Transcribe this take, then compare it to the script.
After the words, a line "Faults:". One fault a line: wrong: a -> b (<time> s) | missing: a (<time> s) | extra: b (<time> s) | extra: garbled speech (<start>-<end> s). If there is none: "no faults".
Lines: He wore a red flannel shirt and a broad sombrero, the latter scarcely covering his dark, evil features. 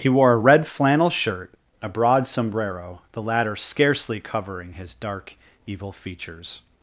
He wore a red flannel shirt a broad sombrero, the latter scarcely covering his dark, evil features.
Faults:
missing: and (1.5 s)